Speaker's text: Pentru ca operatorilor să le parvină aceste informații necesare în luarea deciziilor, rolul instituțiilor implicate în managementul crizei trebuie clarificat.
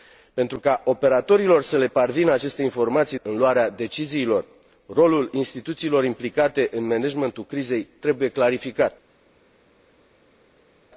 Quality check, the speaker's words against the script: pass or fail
fail